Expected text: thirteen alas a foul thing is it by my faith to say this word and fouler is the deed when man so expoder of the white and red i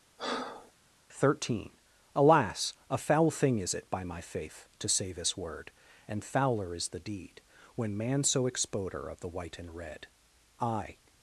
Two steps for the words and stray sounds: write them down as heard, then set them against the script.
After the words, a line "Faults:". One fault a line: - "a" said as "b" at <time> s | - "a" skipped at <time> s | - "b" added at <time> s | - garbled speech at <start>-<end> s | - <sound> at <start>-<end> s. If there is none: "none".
thirteen alas a foul thing is it by my faith to say this word and fouler is the deed when man so expoder of the white and red i
Faults:
- breath at 0.2-0.7 s